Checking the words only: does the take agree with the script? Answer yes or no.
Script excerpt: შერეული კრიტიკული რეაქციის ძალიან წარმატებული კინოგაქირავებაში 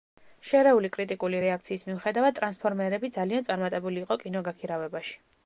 no